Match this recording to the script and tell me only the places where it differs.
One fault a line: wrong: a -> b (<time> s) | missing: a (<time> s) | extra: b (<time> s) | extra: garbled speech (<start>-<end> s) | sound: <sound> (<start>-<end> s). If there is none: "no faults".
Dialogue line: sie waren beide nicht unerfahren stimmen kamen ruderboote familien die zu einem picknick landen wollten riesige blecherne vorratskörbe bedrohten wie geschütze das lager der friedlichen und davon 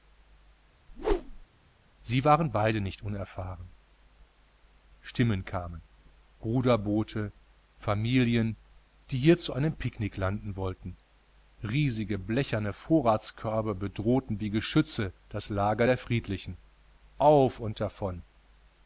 sound: whoosh (0.9-1.5 s)
extra: hier (9.2 s)
extra: auf (17.2 s)